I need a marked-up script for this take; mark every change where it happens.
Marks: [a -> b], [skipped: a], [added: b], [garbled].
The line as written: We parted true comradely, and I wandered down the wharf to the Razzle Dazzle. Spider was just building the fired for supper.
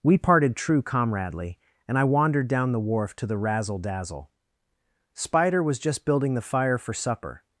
We parted true comradely, and I wandered down the wharf to the Razzle Dazzle. Spider was just building the [fired -> fire] for supper.